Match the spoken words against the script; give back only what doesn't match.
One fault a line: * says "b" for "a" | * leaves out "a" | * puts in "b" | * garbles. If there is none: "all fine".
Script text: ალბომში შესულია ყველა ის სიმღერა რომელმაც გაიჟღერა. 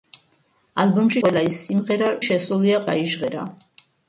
* leaves out "შესულია"
* says "შესულია" for "რომელმაც"